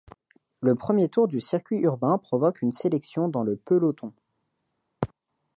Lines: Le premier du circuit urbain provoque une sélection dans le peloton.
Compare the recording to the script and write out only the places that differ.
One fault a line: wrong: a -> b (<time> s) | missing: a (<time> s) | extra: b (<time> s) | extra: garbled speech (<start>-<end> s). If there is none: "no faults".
extra: tour (1.1 s)